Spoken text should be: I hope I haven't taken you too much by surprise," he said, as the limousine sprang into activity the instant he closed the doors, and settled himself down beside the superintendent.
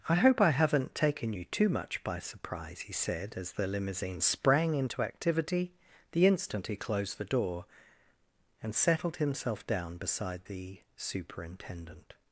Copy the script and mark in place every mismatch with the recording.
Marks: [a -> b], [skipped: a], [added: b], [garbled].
I hope I haven't taken you too much by surprise," he said, as the limousine sprang into activity the instant he closed the [doors, -> door] and settled himself down beside the superintendent.